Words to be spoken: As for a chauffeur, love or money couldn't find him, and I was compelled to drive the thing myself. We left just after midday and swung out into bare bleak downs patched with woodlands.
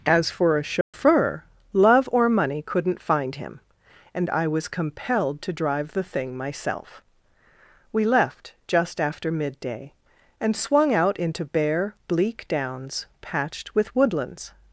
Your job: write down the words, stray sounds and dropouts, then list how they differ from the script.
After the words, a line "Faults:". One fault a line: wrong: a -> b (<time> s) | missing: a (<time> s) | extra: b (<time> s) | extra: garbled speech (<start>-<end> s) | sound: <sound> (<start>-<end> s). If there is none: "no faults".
As for a chauffeur, love or money couldn't find him, and I was compelled to drive the thing myself. We left just after midday and swung out into bare bleak downs patched with woodlands.
Faults:
sound: dropout (0.8-0.9 s)